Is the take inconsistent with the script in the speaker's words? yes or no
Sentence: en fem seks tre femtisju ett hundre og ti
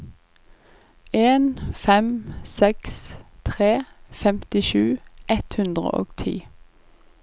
no